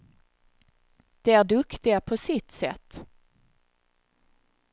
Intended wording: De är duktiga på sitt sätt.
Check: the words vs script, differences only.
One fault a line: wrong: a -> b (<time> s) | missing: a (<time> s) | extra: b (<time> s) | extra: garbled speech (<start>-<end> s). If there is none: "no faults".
no faults